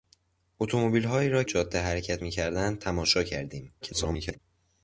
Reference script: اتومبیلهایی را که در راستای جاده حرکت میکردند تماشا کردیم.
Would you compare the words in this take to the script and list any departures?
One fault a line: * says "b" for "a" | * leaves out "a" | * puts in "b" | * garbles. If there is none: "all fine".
* leaves out "که در راستای"
* garbles